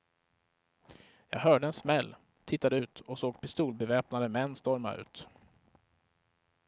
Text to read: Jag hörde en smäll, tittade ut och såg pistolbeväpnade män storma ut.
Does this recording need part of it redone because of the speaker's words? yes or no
no